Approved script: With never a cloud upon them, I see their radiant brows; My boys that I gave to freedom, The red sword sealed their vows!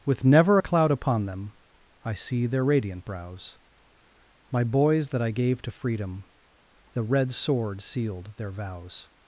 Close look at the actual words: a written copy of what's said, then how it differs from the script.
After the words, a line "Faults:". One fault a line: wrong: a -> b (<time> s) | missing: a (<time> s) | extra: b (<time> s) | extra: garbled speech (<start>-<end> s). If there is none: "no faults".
With never a cloud upon them, I see their radiant brows; My boys that I gave to freedom, The red sword sealed their vows!
Faults:
no faults